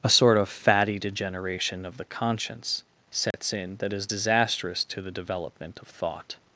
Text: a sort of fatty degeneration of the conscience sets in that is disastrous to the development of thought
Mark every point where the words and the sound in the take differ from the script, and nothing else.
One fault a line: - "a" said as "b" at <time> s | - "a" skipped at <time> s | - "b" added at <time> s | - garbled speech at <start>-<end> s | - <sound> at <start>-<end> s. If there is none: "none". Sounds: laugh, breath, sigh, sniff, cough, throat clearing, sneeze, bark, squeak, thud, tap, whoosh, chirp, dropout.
- dropout at 3.3-3.3 s